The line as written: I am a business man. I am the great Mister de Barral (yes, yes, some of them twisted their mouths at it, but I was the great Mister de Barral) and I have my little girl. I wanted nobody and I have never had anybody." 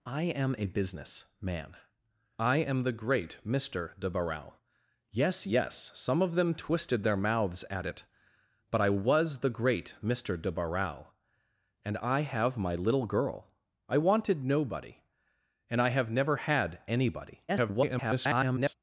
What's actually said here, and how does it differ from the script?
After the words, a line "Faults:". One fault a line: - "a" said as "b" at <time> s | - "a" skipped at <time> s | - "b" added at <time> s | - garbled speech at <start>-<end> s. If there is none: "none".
I am a business man. I am the great Mister de Barral (yes, yes, some of them twisted their mouths at it, but I was the great Mister de Barral) and I have my little girl. I wanted nobody and I have never had anybody." [garbled]
Faults:
- garbled speech at 17.5-18.7 s